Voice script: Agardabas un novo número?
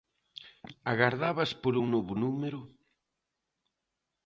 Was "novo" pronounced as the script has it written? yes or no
yes